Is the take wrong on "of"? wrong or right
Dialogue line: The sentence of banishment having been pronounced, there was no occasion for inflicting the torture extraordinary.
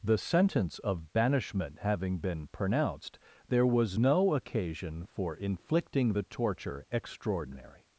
right